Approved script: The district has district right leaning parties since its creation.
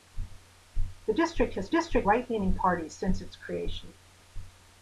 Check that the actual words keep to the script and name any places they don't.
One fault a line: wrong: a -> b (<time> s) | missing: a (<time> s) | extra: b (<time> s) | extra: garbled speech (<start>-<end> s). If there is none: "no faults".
no faults